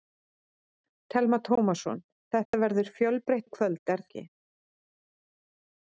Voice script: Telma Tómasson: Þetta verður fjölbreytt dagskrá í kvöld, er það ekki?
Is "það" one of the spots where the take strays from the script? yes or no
yes